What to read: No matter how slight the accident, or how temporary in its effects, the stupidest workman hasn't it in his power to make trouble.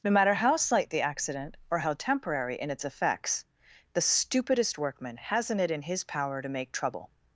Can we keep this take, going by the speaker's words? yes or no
yes